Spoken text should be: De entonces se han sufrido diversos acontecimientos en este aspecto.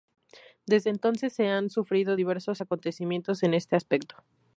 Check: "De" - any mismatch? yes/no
yes